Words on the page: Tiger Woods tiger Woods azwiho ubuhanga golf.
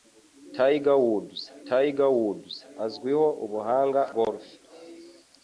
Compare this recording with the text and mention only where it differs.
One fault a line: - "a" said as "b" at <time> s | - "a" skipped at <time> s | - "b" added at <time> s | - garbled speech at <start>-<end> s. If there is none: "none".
none